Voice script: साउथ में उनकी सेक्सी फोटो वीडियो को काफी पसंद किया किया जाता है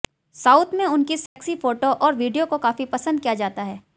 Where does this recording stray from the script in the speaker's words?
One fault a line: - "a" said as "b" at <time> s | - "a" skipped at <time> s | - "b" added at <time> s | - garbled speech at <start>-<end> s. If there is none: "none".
- "और" added at 1.9 s
- "किया" skipped at 3.3 s